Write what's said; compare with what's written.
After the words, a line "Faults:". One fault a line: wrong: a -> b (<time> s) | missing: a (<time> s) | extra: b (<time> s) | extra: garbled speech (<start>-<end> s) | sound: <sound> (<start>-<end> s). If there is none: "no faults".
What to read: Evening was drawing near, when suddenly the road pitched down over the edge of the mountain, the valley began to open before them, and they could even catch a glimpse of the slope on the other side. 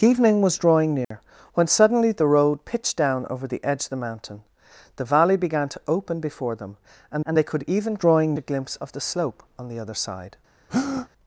Evening was drawing near, when suddenly the road pitched down over the edge of the mountain, the valley began to open before them, and and they could even drawing a glimpse of the slope on the other side.
Faults:
sound: dropout (1.0-1.1 s)
extra: and (7.2 s)
wrong: catch -> drawing (8.0 s)
sound: breath (10.7-11.1 s)